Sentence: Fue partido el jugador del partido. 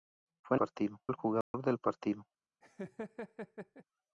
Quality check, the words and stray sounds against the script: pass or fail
fail